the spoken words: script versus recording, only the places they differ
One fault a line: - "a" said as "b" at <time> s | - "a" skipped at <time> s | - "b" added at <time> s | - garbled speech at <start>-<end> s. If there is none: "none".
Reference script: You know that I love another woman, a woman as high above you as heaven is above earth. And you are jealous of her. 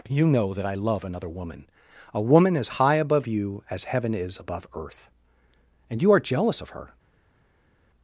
none